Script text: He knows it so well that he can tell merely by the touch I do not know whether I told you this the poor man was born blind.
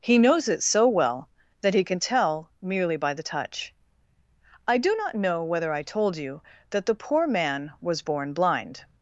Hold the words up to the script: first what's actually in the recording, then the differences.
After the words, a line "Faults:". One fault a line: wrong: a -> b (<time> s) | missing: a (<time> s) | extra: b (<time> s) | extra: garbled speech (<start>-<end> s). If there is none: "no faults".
He knows it so well that he can tell merely by the touch I do not know whether I told you that the poor man was born blind.
Faults:
wrong: this -> that (6.7 s)